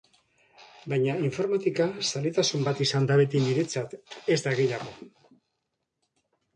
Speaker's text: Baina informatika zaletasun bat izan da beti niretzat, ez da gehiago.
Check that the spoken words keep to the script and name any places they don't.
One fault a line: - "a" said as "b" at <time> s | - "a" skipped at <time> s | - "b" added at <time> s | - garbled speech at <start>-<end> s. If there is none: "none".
none